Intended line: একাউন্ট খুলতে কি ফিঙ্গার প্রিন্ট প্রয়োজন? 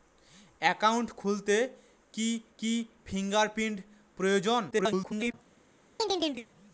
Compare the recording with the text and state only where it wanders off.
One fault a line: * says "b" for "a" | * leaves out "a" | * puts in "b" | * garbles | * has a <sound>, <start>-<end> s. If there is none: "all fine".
* puts in "কি"
* garbles
* has a chirp, 6.0-6.5 s